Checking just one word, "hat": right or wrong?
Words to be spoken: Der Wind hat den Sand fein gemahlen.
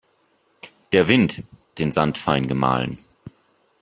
wrong